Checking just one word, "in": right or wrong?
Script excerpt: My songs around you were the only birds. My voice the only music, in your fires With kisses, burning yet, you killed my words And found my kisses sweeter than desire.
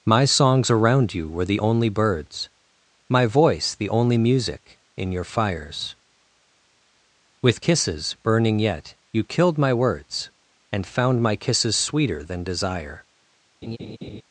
right